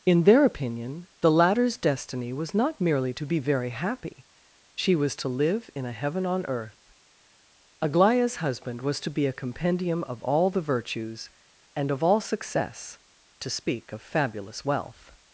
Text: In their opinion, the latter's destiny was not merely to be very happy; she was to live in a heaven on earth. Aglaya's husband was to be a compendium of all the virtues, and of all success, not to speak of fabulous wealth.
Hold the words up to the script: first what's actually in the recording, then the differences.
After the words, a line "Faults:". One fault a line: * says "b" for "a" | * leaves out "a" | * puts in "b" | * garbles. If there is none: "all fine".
In their opinion, the latter's destiny was not merely to be very happy; she was to live in a heaven on earth. Aglaya's husband was to be a compendium of all the virtues, and of all success, to speak of fabulous wealth.
Faults:
* leaves out "not"